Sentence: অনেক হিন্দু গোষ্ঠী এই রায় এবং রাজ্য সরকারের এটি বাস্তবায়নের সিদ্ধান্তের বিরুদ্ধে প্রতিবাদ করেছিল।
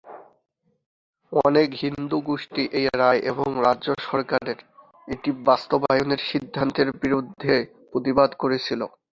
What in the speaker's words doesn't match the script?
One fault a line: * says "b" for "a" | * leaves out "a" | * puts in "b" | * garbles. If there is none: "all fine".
all fine